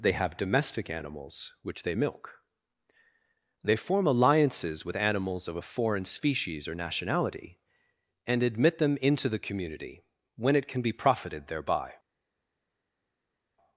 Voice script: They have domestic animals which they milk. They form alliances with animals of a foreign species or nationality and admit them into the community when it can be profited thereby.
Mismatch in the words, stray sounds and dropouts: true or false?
false